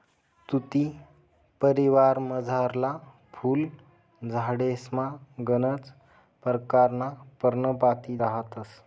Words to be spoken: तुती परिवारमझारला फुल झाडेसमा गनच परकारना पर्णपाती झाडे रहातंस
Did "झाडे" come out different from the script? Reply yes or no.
yes